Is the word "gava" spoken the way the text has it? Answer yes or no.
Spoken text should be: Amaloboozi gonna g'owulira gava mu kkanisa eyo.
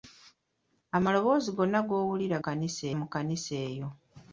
no